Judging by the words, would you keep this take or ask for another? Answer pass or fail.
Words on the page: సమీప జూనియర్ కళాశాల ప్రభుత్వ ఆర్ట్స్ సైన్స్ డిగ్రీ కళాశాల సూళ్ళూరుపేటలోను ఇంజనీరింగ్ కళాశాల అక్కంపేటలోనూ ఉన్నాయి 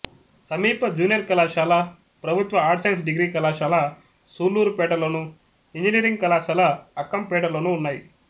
pass